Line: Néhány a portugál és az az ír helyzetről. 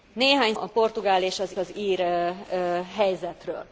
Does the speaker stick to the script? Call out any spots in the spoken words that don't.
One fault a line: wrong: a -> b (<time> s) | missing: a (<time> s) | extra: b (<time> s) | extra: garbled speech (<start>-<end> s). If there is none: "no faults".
no faults